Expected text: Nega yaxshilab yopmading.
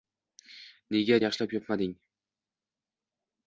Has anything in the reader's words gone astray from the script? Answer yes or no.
no